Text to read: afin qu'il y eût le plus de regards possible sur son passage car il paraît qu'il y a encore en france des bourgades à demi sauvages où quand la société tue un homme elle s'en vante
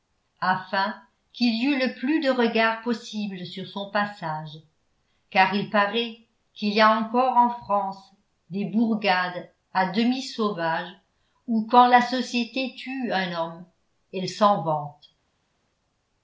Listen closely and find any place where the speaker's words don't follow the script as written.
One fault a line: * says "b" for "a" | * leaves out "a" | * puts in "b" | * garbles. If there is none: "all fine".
all fine